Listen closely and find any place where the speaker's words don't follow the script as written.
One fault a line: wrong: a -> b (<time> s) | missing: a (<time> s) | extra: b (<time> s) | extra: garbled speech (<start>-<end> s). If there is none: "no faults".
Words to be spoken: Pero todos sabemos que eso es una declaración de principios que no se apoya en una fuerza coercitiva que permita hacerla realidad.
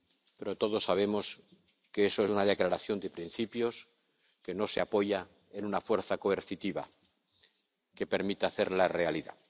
no faults